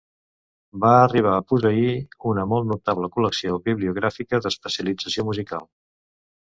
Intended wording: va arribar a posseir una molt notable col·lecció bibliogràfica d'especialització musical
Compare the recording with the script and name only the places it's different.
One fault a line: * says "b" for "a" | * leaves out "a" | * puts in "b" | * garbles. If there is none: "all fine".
all fine